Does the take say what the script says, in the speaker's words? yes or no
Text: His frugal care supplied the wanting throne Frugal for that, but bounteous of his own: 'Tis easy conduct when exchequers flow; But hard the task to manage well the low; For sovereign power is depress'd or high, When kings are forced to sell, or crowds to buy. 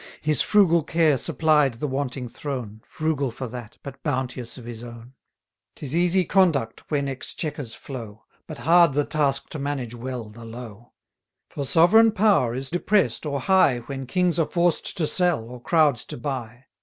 yes